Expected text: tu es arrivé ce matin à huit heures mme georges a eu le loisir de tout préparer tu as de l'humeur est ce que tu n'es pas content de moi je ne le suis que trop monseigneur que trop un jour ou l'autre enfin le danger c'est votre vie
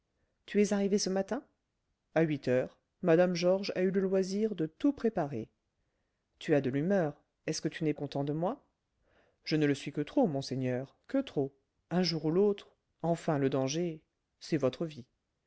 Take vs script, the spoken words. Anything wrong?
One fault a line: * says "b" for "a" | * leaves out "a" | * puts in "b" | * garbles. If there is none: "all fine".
* leaves out "pas"